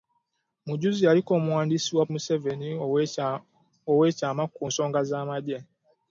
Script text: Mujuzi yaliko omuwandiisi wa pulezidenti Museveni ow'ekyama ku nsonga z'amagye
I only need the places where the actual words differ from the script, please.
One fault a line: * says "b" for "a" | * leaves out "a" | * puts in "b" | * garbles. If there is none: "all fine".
* leaves out "pulezidenti"